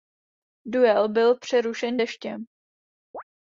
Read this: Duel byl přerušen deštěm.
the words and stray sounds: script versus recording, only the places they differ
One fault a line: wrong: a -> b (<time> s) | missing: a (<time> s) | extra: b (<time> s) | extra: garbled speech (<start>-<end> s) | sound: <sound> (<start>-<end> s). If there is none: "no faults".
sound: chirp (3.1-3.2 s)